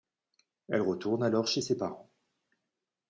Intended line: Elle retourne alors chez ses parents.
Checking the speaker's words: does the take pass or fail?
pass